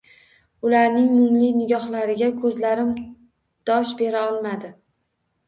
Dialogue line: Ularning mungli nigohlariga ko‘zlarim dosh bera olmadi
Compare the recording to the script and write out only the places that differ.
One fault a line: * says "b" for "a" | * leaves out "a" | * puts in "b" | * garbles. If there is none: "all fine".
all fine